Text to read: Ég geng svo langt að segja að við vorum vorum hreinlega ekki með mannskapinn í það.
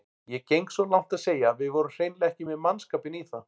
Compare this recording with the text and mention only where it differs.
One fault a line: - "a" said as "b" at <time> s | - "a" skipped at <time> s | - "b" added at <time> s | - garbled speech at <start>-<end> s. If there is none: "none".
- "vorum" skipped at 1.9 s